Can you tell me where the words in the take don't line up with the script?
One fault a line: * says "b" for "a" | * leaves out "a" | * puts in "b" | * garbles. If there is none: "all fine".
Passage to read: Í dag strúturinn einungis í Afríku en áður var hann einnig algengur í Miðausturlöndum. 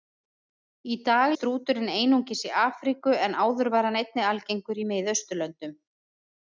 all fine